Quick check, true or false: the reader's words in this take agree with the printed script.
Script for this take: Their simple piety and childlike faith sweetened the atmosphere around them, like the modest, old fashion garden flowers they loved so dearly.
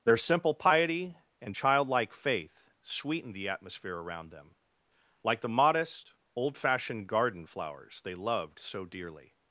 false